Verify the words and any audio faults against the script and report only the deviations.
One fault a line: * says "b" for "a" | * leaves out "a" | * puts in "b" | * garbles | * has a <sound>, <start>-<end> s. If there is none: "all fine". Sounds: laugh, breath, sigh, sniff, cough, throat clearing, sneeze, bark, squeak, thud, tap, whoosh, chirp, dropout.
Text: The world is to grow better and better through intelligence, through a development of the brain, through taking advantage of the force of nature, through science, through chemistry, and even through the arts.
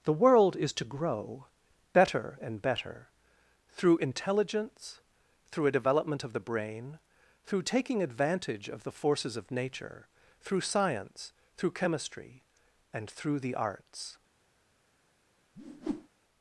* says "forces" for "force"
* leaves out "even"
* has a whoosh, 15.5-16.1 s